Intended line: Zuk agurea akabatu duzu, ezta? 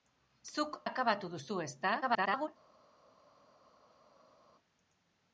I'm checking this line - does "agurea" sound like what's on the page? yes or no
no